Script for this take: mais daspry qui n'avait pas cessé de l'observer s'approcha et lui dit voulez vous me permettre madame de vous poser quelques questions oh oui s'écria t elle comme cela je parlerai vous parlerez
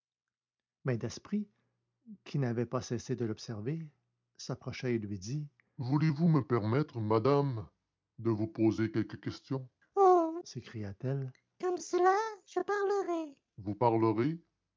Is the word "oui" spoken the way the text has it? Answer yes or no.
no